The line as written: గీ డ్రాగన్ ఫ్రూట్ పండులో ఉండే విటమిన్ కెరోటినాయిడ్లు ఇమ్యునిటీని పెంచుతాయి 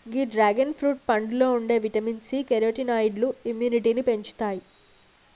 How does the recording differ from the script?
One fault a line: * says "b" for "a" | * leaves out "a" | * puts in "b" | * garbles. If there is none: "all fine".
* puts in "సి"